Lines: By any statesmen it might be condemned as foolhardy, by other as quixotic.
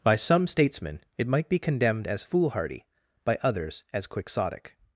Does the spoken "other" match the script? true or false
false